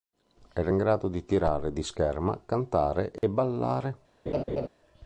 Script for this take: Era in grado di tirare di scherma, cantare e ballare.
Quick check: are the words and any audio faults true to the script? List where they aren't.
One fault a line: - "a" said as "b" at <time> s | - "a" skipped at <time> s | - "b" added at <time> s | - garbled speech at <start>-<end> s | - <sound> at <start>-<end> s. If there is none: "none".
- dropout at 3.2-3.2 s
- laugh at 4.3-4.7 s